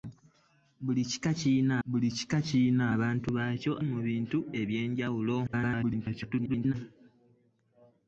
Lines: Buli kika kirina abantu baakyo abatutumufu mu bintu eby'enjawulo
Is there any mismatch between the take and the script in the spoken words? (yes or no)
yes